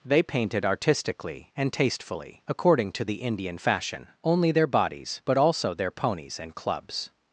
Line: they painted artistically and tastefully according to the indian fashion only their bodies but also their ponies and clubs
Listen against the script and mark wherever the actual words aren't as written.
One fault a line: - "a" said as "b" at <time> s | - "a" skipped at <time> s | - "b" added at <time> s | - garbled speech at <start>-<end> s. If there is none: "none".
none